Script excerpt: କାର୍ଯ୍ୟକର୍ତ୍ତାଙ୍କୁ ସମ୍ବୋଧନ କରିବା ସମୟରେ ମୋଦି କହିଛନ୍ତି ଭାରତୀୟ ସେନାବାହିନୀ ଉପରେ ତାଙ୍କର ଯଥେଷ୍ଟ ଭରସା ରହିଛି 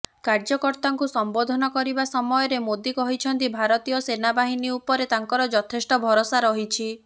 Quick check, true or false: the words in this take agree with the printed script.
true